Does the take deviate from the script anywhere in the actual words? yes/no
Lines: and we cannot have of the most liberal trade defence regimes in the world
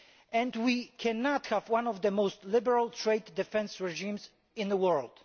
yes